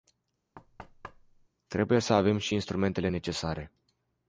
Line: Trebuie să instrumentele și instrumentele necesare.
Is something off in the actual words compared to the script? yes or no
yes